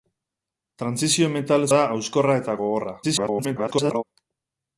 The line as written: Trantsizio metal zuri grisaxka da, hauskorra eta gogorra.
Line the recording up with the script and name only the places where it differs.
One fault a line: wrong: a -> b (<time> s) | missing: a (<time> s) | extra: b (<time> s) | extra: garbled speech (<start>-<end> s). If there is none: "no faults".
missing: zuri grisaxka (1.7 s)
extra: garbled speech (3.0-4.0 s)